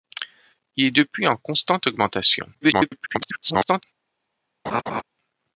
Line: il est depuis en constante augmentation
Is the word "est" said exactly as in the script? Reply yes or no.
yes